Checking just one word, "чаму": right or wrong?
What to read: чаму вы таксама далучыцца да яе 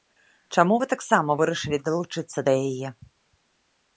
right